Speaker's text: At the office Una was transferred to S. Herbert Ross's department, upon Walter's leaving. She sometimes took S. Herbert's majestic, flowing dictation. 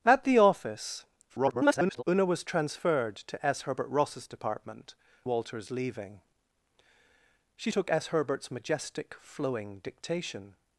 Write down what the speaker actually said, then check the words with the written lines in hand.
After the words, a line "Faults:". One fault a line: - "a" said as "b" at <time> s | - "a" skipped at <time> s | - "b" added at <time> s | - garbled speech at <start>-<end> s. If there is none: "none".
At the office [garbled] Una was transferred to S. Herbert Ross's department, Walter's leaving. She took S. Herbert's majestic, flowing dictation.
Faults:
- garbled speech at 1.3-2.0 s
- "upon" skipped at 5.0 s
- "sometimes" skipped at 7.7 s